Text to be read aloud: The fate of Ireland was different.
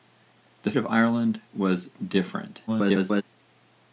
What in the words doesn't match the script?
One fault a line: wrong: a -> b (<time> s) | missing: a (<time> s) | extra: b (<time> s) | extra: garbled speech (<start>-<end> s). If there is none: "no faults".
missing: fate (0.7 s)
extra: garbled speech (2.7-3.2 s)